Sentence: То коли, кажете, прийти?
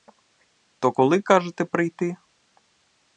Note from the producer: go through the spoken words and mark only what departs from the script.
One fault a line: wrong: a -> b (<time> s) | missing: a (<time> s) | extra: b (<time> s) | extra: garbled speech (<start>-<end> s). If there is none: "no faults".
no faults